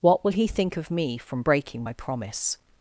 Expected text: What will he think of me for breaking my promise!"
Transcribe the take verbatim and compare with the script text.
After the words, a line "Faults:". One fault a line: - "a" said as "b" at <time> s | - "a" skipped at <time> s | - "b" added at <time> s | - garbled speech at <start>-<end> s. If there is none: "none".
What will he think of me from breaking my promise!"
Faults:
- "for" said as "from" at 1.2 s